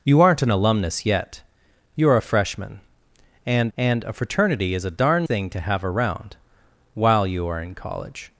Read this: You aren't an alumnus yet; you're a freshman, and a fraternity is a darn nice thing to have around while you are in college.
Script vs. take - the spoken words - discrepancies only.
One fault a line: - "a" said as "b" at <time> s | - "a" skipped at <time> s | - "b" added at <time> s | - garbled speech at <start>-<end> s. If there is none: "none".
- "and" added at 3.8 s
- "nice" skipped at 5.3 s